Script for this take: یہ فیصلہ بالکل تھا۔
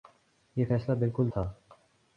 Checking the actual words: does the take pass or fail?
pass